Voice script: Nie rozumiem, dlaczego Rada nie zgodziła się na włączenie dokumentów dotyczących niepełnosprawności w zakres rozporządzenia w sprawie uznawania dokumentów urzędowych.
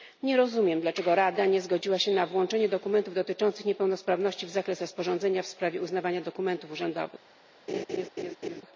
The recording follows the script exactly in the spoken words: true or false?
true